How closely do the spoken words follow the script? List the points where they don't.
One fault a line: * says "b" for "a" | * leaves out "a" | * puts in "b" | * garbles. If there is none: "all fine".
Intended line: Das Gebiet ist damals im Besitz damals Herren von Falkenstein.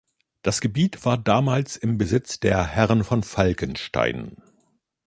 * says "war" for "ist"
* says "der" for "damals"